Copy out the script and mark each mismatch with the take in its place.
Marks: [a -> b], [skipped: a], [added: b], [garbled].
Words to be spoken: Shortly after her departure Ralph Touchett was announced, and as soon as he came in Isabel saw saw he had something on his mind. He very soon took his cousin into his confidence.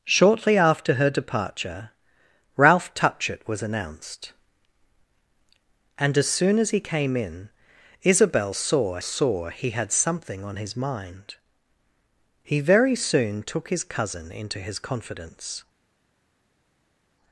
Shortly after her departure Ralph Touchett was announced, and as soon as he came in Isabel saw saw he had something on his mind. He very soon took his cousin into his confidence.